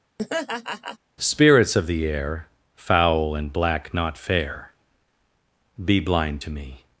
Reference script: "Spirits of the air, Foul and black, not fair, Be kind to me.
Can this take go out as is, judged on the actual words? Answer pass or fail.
fail